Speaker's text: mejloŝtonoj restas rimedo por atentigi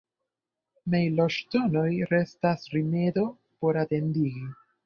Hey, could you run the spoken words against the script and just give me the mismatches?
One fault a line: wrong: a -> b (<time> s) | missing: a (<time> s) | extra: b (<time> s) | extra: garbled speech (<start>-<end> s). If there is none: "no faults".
no faults